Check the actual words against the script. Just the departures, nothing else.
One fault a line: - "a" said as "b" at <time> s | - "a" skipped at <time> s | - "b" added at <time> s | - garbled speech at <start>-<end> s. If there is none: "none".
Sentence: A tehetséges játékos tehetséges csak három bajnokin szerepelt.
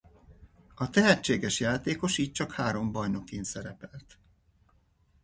- "tehetséges" said as "így" at 2.2 s